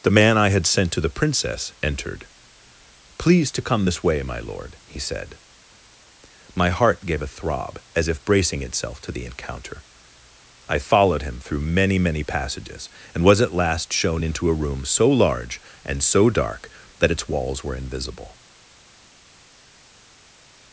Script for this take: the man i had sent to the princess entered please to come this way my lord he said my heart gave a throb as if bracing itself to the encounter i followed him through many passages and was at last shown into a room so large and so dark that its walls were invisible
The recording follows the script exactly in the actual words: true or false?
false